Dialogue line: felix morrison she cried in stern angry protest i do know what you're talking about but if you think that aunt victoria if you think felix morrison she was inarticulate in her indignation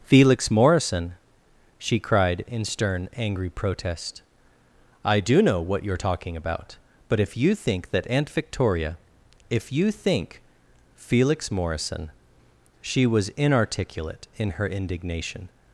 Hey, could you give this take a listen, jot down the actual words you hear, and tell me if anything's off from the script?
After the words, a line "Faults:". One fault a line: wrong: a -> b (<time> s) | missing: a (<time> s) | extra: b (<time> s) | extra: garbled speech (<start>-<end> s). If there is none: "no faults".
felix morrison she cried in stern angry protest i do know what you're talking about but if you think that aunt victoria if you think felix morrison she was inarticulate in her indignation
Faults:
no faults